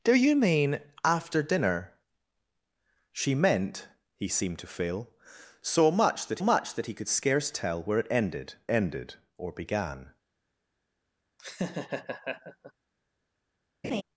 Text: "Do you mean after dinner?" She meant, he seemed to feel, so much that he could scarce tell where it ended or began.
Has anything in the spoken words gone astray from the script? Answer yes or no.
yes